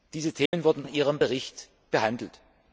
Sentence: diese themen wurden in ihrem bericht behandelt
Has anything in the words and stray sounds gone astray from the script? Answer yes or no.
yes